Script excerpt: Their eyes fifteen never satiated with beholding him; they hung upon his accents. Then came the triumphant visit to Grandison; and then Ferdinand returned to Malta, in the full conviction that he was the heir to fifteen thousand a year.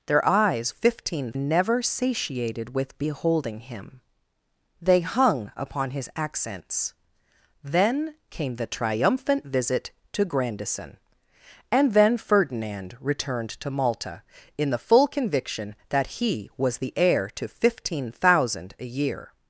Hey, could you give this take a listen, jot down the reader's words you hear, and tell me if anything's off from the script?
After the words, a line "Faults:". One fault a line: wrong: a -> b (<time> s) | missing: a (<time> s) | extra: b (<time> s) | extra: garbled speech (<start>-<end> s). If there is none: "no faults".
Their eyes fifteen never satiated with beholding him; they hung upon his accents. Then came the triumphant visit to Grandison; and then Ferdinand returned to Malta, in the full conviction that he was the heir to fifteen thousand a year.
Faults:
no faults